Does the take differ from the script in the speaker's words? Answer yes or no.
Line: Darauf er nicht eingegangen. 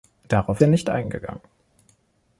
no